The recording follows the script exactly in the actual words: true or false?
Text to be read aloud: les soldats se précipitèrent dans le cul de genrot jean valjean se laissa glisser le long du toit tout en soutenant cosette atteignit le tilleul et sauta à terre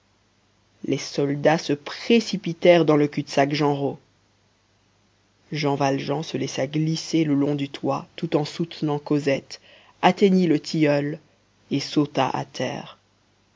false